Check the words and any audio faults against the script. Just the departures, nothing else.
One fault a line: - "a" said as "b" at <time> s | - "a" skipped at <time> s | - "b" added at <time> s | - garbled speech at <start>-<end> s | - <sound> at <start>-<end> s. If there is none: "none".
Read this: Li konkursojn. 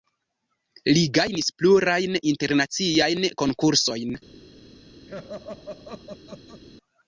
- "gajnis plurajn internaciajn" added at 1.2 s
- laugh at 5.1-6.6 s